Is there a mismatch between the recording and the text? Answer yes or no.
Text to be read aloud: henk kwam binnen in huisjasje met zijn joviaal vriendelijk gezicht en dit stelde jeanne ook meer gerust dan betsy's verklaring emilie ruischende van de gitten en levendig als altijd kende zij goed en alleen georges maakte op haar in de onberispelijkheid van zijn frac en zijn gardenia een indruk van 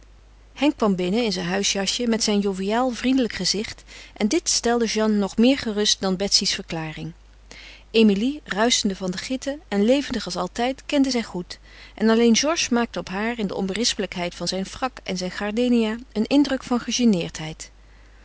yes